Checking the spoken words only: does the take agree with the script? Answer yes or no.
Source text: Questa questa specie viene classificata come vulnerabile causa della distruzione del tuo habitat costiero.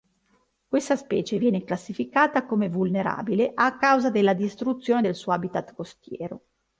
no